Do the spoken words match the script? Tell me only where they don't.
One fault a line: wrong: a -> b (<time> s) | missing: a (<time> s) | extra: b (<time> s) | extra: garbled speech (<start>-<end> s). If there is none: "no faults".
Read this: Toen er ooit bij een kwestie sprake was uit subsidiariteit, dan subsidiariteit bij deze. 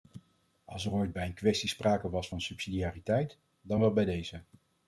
wrong: Toen -> Als (0.7 s)
wrong: uit -> van (2.3 s)
wrong: subsidiariteit -> wel (3.8 s)